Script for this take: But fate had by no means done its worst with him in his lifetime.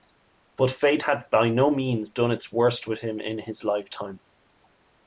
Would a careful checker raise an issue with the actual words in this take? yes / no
no